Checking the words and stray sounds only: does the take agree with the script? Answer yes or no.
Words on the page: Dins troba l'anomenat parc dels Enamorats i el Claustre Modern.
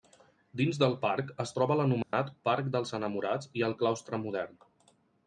no